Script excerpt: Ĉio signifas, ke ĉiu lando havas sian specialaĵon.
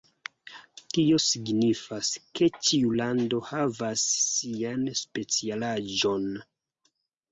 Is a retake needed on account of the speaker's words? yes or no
yes